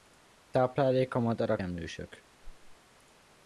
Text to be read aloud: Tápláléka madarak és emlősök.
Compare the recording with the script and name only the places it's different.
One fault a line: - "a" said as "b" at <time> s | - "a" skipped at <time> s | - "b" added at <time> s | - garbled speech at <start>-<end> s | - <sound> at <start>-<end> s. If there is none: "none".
- "és" skipped at 1.6 s
- whoosh at 2.4-2.8 s